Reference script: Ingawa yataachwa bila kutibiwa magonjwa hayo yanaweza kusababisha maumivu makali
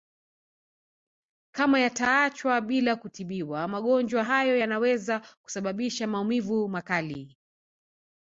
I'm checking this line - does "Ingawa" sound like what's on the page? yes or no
no